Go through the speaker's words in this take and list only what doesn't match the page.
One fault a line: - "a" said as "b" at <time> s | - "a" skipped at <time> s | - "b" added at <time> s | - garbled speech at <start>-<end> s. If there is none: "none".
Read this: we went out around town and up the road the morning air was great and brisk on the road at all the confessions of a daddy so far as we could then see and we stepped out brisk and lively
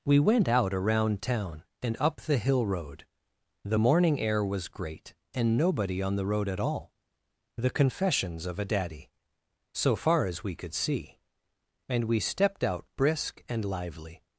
- "hill" added at 2.4 s
- "brisk" said as "nobody" at 5.6 s
- "then" skipped at 10.7 s